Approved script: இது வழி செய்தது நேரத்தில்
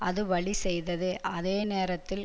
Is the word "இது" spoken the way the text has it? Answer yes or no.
no